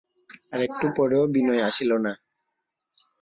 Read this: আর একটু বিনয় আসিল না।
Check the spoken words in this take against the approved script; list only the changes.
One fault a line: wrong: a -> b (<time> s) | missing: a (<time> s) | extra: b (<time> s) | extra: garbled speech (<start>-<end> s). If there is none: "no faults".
extra: পরেও (1.0 s)